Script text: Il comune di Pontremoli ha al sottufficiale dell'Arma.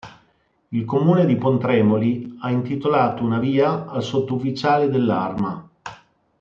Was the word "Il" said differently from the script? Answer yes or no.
no